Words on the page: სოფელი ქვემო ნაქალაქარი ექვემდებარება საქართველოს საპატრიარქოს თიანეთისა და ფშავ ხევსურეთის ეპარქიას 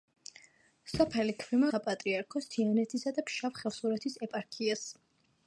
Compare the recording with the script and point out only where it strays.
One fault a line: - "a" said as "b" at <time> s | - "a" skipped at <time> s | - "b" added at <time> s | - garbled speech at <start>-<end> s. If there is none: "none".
- "ნაქალაქარი ექვემდებარება საქართველოს" skipped at 1.7 s